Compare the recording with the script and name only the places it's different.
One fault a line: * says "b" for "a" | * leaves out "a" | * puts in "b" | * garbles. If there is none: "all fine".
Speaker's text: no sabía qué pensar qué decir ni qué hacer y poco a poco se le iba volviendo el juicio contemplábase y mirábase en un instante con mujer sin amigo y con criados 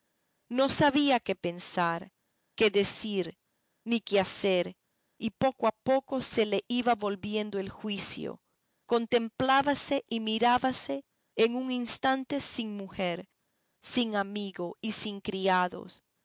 * says "sin" for "con"
* says "sin" for "con"